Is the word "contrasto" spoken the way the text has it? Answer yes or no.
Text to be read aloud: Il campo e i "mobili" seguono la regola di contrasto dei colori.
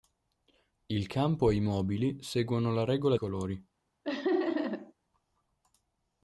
no